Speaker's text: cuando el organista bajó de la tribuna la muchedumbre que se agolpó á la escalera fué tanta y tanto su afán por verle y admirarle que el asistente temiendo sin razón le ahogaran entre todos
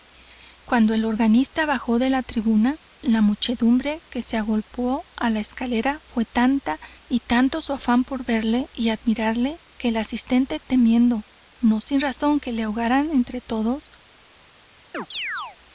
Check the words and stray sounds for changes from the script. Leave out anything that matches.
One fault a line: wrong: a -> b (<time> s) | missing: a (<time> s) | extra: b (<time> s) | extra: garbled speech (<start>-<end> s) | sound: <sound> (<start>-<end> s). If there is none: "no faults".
extra: no (11.6 s)
extra: que (12.4 s)
sound: chirp (14.9-15.6 s)